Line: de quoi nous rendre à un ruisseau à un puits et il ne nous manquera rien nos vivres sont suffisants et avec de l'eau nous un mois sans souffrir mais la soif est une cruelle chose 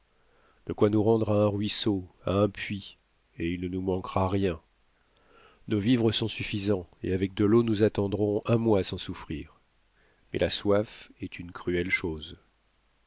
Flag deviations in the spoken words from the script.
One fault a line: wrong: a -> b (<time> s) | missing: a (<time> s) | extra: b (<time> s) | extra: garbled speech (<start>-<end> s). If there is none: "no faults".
extra: attendrons (7.8 s)